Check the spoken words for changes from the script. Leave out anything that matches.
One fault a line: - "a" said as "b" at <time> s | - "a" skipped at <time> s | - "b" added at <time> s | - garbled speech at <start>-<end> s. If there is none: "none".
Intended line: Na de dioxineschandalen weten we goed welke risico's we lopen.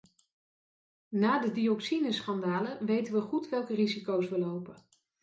none